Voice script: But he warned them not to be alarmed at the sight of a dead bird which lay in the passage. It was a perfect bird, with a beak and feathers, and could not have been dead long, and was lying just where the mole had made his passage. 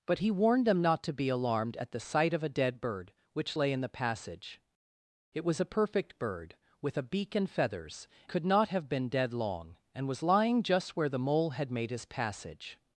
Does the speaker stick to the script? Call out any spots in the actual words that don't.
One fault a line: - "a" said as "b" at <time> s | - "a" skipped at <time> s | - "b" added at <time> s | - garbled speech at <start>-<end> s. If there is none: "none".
- "and" skipped at 8.1 s